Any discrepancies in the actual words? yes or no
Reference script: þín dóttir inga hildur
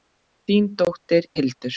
yes